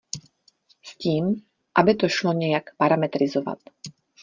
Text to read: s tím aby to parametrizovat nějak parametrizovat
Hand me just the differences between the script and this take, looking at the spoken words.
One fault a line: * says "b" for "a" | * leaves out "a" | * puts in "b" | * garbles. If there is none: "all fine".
* says "šlo" for "parametrizovat"